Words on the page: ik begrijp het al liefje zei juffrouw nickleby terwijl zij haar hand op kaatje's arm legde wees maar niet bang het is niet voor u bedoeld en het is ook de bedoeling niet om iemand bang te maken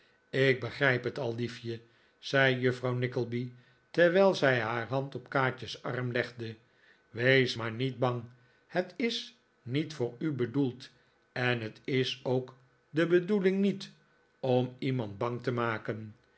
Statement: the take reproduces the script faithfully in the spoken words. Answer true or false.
true